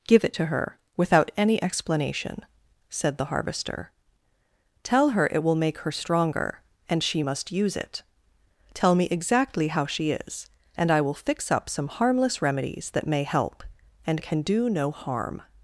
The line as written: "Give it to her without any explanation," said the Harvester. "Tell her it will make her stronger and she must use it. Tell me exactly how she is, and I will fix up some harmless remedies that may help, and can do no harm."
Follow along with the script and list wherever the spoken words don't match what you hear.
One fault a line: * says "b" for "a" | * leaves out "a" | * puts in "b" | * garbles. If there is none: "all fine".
all fine